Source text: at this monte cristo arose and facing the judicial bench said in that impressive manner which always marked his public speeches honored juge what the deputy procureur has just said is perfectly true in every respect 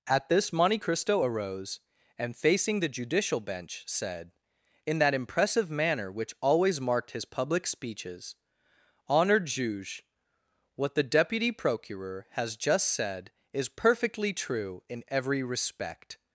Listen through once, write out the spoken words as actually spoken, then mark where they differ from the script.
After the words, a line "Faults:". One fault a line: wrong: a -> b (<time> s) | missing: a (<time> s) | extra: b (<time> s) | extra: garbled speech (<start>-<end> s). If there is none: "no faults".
at this monte cristo arose and facing the judicial bench said in that impressive manner which always marked his public speeches honored juge what the deputy procureur has just said is perfectly true in every respect
Faults:
no faults